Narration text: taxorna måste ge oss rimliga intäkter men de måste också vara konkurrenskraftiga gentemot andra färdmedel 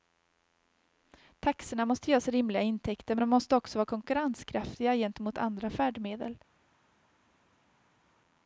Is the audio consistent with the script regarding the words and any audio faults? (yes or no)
yes